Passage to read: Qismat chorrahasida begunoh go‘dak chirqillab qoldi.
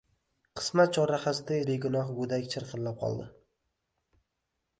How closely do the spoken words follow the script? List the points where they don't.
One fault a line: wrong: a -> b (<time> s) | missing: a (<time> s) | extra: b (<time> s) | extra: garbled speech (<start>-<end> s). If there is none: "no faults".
no faults